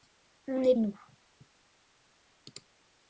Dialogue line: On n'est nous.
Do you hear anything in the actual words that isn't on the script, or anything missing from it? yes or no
no